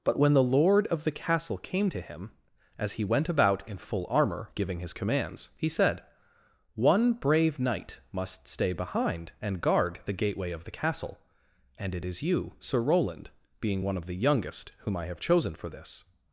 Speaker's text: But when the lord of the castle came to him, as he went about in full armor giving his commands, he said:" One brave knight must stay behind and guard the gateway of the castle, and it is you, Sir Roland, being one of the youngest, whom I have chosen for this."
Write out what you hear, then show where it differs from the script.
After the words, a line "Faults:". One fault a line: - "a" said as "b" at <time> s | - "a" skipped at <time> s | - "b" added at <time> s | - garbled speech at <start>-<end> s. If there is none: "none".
But when the lord of the castle came to him, as he went about in full armor giving his commands, he said:" One brave knight must stay behind and guard the gateway of the castle, and it is you, Sir Roland, being one of the youngest, whom I have chosen for this."
Faults:
none